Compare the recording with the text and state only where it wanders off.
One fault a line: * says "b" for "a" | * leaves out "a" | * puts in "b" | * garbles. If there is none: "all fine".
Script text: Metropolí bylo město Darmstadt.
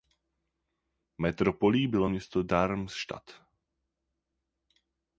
all fine